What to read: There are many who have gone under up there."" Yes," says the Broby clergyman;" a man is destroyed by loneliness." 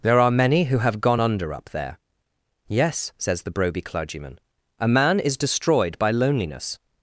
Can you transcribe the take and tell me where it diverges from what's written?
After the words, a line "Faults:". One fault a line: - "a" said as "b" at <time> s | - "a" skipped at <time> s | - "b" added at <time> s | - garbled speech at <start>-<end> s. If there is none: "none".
There are many who have gone under up there."" Yes," says the Broby clergyman;" a man is destroyed by loneliness."
Faults:
none